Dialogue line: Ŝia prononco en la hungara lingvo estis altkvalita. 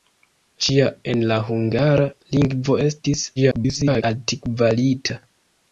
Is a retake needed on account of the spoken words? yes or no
yes